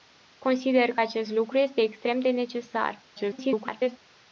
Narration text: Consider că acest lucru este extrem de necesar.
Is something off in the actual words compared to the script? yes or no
yes